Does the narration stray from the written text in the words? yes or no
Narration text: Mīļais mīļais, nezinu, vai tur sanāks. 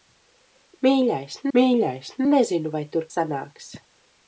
no